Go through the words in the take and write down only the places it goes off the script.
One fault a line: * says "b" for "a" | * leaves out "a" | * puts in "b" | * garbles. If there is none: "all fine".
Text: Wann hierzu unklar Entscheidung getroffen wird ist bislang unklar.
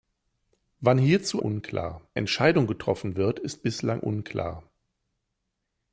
all fine